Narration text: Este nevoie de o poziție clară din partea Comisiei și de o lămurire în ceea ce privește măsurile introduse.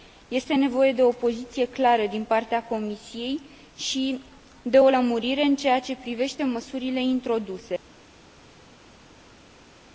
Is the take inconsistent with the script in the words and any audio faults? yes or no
no